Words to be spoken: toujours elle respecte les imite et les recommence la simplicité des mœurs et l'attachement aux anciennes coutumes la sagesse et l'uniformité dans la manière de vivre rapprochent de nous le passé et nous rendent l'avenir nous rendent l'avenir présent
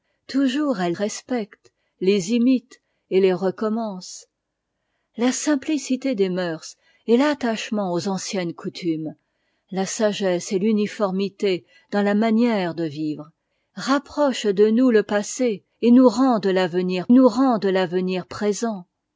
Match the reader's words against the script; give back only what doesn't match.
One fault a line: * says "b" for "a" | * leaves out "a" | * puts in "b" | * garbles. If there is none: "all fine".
all fine